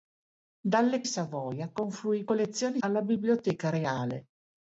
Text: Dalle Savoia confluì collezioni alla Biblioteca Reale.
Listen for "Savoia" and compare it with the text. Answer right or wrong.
right